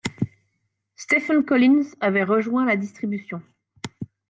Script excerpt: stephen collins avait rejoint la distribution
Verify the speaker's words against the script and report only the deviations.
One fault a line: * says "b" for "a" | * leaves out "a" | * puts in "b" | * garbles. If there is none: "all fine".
all fine